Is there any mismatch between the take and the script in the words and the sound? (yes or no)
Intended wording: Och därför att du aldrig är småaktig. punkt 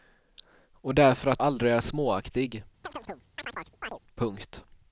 yes